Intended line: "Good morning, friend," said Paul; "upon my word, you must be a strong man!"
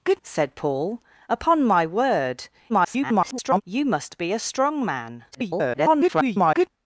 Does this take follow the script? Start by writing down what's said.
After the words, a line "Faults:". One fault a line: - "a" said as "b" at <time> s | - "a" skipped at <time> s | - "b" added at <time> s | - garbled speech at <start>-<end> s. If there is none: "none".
"Good," said Paul; "upon my word, [garbled] you must be a strong man!" [garbled]
Faults:
- "morning friend" skipped at 0.2 s
- garbled speech at 2.7-3.6 s
- garbled speech at 5.3-6.7 s